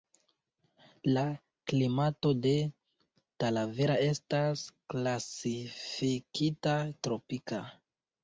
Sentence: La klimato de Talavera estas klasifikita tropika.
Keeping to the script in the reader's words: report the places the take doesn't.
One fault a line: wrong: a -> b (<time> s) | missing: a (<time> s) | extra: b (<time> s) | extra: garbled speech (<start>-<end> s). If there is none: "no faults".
no faults